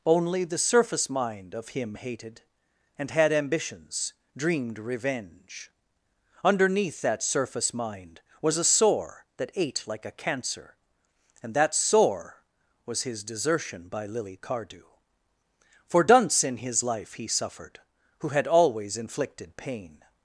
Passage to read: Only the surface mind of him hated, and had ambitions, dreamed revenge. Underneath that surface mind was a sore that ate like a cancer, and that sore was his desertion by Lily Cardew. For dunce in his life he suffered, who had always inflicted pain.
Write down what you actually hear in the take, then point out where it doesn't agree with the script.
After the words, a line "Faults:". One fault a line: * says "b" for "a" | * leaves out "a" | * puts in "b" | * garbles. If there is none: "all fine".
Only the surface mind of him hated, and had ambitions, dreamed revenge. Underneath that surface mind was a sore that ate like a cancer, and that sore was his desertion by Lily Cardew. For dunce in his life he suffered, who had always inflicted pain.
Faults:
all fine